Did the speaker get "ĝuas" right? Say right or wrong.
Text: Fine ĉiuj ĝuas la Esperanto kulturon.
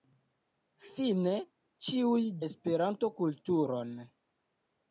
wrong